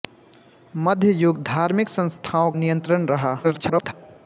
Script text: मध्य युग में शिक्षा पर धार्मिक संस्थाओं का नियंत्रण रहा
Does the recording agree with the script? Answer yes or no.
no